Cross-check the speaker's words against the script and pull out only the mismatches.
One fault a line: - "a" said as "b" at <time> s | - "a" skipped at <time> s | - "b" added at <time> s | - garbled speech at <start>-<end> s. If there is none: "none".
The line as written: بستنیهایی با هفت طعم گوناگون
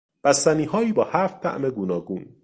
none